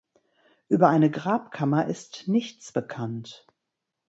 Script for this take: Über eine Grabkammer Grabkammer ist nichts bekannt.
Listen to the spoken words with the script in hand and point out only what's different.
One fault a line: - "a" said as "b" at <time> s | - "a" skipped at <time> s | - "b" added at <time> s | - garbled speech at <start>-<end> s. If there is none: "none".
- "Grabkammer" skipped at 1.9 s